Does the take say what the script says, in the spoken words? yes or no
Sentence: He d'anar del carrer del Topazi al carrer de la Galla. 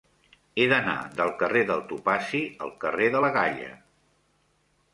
yes